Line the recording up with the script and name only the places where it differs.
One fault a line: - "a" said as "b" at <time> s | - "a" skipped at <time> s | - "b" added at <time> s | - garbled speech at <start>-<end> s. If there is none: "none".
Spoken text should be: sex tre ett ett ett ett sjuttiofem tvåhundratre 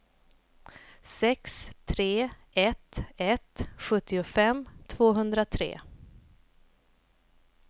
- "ett ett" skipped at 3.7 s